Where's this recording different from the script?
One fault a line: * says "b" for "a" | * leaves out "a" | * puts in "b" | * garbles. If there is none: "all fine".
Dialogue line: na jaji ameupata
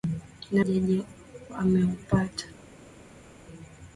all fine